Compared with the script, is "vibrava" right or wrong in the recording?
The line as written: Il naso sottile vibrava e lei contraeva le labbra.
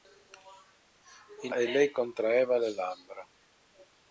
wrong